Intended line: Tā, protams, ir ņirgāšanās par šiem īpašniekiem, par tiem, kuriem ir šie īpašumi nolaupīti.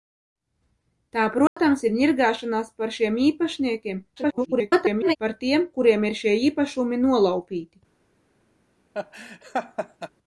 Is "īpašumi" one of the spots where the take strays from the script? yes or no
no